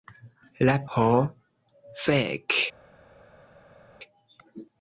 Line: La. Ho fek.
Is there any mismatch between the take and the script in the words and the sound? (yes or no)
no